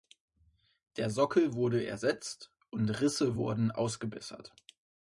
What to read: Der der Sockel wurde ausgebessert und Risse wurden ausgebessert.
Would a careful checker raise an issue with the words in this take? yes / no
yes